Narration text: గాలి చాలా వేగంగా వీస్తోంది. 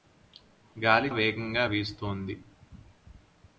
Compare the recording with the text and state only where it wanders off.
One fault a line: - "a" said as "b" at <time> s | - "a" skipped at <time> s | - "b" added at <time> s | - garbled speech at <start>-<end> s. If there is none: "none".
- "చాలా" skipped at 1.1 s